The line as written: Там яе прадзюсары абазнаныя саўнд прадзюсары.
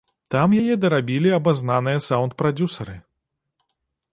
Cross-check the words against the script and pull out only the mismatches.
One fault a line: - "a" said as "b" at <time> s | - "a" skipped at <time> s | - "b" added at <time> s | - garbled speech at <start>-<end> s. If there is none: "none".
- "прадзюсары" said as "дарабілі" at 0.8 s